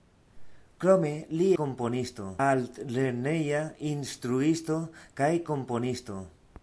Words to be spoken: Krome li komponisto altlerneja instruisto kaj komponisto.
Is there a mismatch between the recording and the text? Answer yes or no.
no